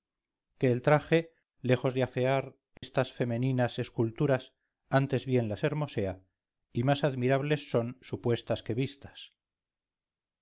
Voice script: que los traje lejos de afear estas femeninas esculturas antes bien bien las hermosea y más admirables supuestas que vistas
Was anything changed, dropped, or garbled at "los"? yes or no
yes